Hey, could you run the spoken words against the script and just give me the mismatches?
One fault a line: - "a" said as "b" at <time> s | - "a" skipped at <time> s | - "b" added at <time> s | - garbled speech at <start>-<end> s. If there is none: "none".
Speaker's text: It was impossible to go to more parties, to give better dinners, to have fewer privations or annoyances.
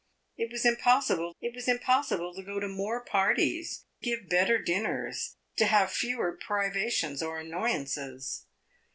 - "it was impossible" added at 1.4 s
- "to" skipped at 3.8 s